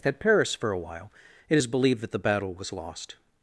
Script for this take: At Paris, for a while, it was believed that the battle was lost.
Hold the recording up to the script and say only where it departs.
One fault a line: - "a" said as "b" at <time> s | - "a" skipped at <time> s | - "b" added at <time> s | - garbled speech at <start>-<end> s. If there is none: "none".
- "was" said as "is" at 1.5 s